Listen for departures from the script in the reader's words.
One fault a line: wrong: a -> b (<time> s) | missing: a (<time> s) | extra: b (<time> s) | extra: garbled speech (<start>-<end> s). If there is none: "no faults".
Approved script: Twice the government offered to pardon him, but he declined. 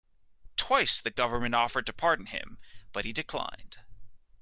no faults